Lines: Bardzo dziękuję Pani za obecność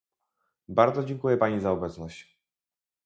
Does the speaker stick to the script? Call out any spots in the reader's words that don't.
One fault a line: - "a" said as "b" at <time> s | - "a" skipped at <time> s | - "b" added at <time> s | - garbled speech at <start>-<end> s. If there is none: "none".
none